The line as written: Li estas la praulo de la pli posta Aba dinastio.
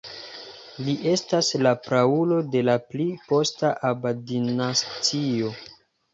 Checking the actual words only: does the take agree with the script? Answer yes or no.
yes